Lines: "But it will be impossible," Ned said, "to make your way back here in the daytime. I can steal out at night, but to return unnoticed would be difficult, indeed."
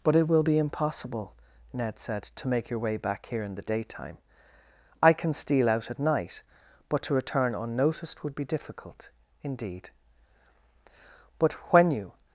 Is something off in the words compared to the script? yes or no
yes